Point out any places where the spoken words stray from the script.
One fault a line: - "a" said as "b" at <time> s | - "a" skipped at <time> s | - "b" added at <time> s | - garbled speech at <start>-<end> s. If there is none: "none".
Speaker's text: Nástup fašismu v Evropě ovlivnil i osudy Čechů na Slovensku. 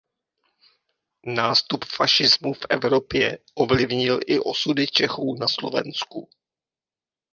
none